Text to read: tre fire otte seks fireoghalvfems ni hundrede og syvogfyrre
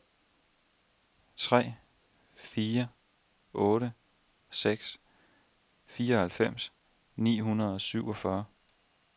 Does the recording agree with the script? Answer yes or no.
yes